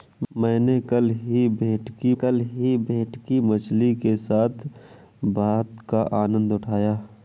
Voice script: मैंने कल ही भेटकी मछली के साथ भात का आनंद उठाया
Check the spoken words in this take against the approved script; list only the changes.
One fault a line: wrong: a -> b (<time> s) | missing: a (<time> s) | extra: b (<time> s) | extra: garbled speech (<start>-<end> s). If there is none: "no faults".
extra: कल ही भेटकी (2.1 s)